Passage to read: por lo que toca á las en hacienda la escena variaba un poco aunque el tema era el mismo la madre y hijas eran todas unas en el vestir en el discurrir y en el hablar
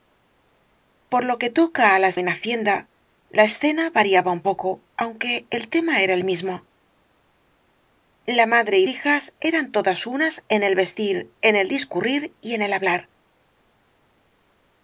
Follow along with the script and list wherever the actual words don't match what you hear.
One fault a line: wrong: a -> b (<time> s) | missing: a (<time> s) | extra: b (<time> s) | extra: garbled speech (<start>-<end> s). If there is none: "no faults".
no faults